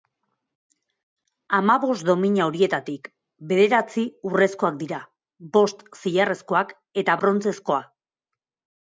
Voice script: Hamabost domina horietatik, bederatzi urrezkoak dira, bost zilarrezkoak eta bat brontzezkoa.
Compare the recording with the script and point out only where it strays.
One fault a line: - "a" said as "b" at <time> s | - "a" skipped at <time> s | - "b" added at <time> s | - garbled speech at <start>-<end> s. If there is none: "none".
- "bat" skipped at 7.2 s